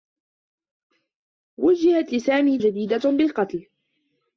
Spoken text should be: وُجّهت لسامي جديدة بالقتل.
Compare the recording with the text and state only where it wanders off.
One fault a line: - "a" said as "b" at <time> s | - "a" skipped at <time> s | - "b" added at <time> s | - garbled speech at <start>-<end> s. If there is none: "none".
none